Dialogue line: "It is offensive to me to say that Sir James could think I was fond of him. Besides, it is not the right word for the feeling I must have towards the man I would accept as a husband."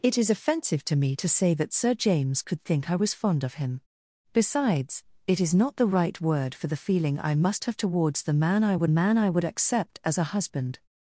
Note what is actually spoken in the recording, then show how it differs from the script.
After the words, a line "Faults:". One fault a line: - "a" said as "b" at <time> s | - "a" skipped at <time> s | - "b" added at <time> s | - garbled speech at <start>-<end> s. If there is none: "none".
"It is offensive to me to say that Sir James could think I was fond of him. Besides, it is not the right word for the feeling I must have towards the man I would man I would accept as a husband."
Faults:
- "man I would" added at 8.9 s